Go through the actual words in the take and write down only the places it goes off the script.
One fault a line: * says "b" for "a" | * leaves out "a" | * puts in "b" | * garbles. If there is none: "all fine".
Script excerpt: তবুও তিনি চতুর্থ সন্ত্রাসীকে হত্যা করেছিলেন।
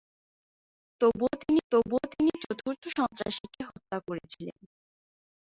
* puts in "তবুও তিনি"